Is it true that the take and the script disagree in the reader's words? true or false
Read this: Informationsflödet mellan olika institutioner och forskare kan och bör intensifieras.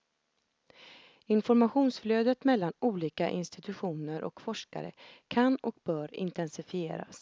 false